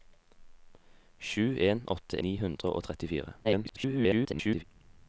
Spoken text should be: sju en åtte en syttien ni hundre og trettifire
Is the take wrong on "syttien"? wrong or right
wrong